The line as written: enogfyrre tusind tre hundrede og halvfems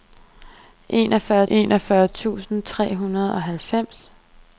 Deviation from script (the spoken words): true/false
true